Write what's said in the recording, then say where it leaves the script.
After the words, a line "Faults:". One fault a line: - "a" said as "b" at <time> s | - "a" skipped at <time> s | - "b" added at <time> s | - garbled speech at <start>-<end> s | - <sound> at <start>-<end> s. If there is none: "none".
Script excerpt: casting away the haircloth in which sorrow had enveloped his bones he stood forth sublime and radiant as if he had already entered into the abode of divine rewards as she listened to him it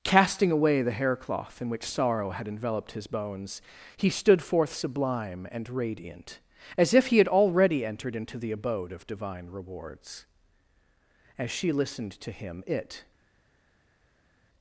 casting away the haircloth in which sorrow had enveloped his bones he stood forth sublime and radiant as if he had already entered into the abode of divine rewards as she listened to him it
Faults:
none